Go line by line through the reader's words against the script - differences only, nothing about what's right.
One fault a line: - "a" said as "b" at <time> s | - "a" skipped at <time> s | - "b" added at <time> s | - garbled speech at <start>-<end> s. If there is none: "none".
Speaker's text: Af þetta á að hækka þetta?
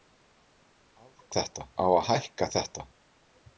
none